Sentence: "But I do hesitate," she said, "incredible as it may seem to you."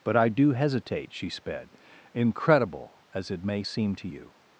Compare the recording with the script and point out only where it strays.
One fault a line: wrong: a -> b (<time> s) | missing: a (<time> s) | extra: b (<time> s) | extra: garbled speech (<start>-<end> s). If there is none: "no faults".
wrong: said -> sped (1.3 s)